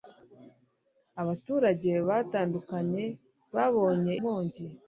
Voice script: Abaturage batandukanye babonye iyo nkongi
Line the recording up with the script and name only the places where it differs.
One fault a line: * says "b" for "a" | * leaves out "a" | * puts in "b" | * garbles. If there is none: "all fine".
* leaves out "iyo"